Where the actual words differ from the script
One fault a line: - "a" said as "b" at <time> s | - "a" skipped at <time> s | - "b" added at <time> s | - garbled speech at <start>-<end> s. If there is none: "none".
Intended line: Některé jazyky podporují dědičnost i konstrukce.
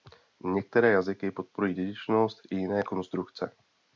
- "jiné" added at 2.5 s